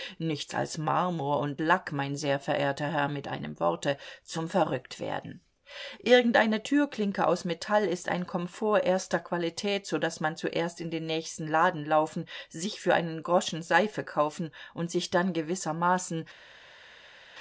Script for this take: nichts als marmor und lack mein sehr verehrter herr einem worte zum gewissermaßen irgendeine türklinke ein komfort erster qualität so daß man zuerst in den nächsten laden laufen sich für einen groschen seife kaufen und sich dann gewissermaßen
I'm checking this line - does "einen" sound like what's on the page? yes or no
yes